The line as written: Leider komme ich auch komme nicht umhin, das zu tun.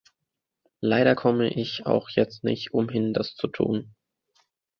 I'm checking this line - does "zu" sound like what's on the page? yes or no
yes